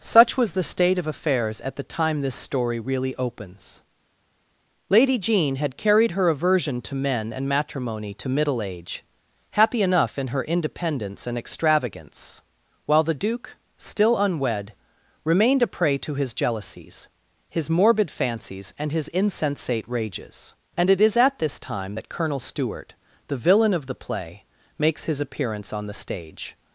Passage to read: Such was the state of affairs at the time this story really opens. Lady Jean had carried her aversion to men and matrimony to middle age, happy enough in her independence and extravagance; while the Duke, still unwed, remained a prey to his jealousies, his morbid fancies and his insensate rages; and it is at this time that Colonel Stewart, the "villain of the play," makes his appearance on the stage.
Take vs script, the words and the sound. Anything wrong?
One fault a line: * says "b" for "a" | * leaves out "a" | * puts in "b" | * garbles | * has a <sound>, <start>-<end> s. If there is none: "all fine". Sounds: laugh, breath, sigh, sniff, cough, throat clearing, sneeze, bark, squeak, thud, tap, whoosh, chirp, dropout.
all fine